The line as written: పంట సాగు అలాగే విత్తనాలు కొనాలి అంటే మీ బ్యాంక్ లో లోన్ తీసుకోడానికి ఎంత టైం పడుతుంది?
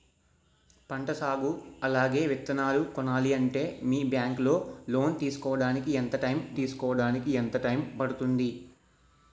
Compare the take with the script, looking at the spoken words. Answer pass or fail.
fail